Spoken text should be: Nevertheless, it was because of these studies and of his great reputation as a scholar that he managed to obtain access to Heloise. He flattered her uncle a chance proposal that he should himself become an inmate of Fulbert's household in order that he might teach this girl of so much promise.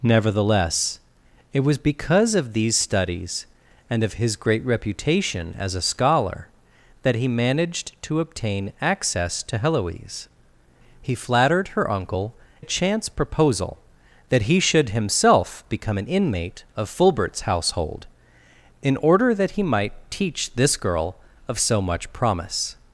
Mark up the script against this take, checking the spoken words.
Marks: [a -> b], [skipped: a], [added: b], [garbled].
Nevertheless, it was because of these studies and of his great reputation as a scholar that he managed to obtain access to Heloise. He flattered her uncle a chance proposal that he should himself become an inmate of Fulbert's household in order that he might teach this girl of so much promise.